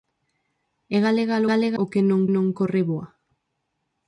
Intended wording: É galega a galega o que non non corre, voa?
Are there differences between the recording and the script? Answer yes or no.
no